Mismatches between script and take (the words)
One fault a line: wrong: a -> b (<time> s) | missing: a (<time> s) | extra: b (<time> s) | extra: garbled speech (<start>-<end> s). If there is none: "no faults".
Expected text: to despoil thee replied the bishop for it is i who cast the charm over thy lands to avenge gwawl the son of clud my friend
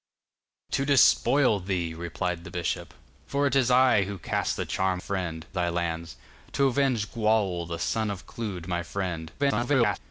wrong: over -> friend (5.0 s)
extra: garbled speech (9.4-10.0 s)